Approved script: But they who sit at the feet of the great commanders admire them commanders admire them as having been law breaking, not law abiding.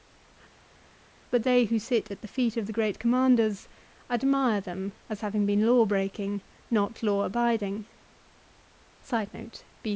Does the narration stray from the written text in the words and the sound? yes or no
yes